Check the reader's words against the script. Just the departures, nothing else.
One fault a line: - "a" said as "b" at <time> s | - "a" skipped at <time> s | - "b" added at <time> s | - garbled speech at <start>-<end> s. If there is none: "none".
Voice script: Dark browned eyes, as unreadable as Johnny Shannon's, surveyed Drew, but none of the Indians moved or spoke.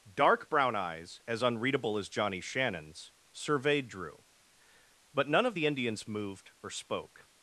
- "browned" said as "brown" at 0.5 s